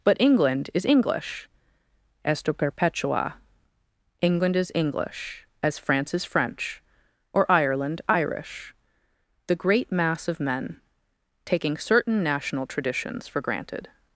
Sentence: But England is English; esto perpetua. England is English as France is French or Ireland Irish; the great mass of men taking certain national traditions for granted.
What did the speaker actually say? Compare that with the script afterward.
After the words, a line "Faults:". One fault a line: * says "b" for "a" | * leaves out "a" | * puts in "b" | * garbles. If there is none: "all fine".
But England is English; esto perpetua. England is English as France is French or Ireland Irish; the great mass of men taking certain national traditions for granted.
Faults:
all fine